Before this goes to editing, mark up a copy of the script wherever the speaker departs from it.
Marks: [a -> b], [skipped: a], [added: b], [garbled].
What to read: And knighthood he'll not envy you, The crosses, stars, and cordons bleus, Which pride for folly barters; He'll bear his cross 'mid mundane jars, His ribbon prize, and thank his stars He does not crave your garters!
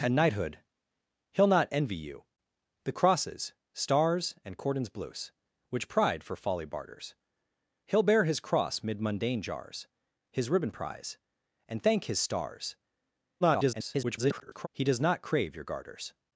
And knighthood he'll not envy you, The crosses, stars, and cordons bleus, Which pride for folly barters; He'll bear his cross 'mid mundane jars, His ribbon prize, and thank his stars [garbled] He does not crave your garters!